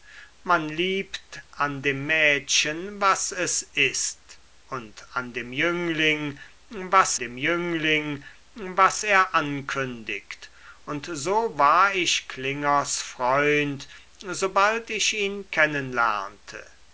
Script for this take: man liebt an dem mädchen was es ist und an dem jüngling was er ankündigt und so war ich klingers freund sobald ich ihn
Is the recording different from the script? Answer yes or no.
yes